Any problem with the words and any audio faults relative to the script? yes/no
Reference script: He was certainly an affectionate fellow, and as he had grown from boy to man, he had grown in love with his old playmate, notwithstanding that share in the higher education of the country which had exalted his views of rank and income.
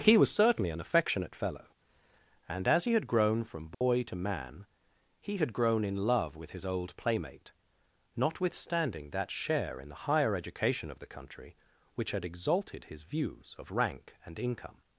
yes